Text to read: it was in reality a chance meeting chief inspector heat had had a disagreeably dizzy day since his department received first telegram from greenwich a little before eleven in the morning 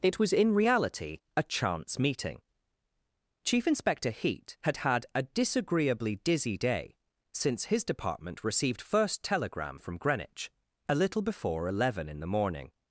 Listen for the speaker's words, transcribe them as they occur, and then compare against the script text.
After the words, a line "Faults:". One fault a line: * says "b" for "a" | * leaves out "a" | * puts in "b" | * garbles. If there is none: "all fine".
it was in reality a chance meeting chief inspector heat had had a disagreeably dizzy day since his department received first telegram from greenwich a little before eleven in the morning
Faults:
all fine